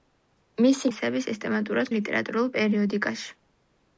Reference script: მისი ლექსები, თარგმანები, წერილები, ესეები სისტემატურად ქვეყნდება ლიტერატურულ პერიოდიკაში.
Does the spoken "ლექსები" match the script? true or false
false